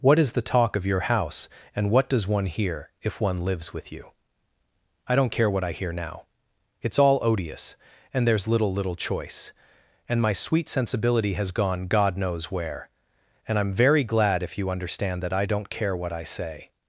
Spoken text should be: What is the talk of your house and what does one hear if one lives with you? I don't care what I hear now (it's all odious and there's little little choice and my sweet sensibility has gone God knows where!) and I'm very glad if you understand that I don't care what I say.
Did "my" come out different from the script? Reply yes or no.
no